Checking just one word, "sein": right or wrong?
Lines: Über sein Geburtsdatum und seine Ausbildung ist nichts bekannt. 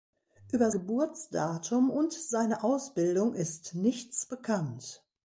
wrong